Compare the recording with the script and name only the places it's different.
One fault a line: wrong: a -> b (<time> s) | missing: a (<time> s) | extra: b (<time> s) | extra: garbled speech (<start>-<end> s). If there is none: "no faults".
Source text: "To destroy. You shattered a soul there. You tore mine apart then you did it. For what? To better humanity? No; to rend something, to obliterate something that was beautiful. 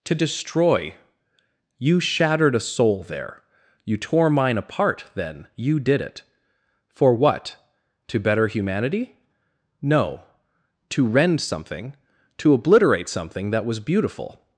no faults